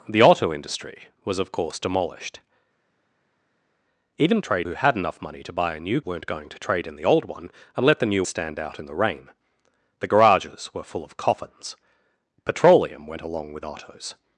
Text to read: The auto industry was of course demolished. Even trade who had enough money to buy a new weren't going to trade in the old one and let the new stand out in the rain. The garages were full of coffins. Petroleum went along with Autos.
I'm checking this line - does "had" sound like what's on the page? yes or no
yes